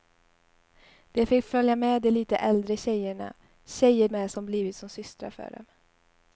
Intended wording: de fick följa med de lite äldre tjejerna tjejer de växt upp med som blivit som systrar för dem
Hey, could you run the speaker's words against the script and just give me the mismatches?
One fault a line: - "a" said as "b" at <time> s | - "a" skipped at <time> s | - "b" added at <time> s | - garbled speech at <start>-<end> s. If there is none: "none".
- "de växt upp" skipped at 4.1 s